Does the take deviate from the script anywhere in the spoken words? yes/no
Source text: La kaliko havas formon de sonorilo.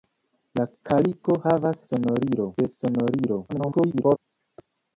yes